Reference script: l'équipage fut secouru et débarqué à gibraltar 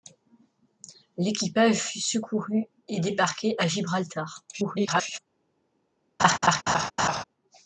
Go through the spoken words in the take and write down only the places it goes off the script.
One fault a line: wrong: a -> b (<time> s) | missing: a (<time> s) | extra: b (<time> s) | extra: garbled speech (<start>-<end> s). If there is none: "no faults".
extra: garbled speech (4.5-5.2 s)